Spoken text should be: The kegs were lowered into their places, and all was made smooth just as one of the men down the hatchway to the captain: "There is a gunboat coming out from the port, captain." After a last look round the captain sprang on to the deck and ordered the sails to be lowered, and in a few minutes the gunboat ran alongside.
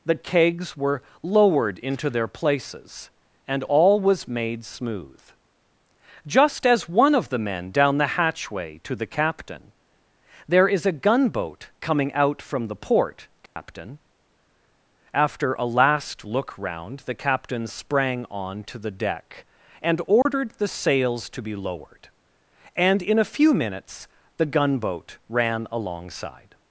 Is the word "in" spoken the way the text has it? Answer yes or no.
yes